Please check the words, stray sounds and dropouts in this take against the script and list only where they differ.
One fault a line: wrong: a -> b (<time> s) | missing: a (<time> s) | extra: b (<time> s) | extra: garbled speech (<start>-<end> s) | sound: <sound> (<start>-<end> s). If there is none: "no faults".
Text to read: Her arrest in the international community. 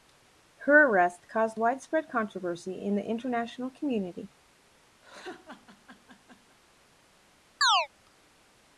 extra: caused widespread controversy (1.3 s)
sound: laugh (5.0-6.6 s)
sound: chirp (7.6-7.9 s)